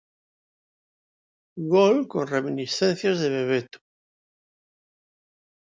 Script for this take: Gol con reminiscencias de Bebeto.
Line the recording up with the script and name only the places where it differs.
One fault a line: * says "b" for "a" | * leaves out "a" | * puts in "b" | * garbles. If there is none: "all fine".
all fine